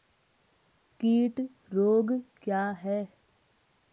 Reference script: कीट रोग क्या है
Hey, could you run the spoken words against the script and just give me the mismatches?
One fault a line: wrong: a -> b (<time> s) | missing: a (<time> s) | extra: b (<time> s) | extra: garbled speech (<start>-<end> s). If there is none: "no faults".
no faults